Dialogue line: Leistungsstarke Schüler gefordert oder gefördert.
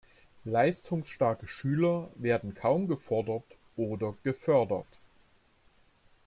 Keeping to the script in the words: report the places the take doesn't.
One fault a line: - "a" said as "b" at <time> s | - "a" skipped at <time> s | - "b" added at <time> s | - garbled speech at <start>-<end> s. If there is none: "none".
- "werden kaum" added at 2.1 s